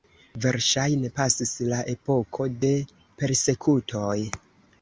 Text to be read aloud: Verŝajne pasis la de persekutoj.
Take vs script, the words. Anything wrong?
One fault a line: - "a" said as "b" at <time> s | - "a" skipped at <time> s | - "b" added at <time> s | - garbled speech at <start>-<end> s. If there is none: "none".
- "epoko" added at 1.9 s